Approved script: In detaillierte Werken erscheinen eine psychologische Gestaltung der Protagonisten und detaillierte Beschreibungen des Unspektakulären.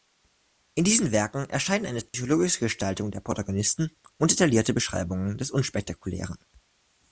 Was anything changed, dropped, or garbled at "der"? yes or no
no